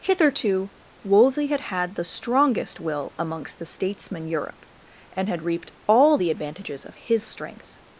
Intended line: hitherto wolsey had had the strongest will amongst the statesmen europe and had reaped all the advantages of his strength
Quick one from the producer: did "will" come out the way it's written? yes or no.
yes